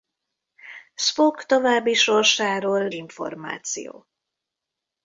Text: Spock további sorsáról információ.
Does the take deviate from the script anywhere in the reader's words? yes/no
no